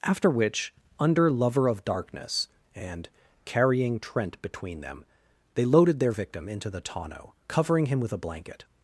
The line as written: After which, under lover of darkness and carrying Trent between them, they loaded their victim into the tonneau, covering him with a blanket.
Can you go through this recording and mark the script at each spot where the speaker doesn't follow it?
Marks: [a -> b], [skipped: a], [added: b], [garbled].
After which, under lover of darkness and carrying Trent between them, they loaded their victim into the tonneau, covering him with a blanket.